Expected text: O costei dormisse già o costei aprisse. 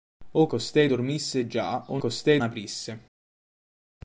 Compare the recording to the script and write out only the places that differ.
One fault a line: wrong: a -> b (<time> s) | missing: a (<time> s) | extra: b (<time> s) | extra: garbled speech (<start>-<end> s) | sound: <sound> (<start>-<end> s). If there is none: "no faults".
no faults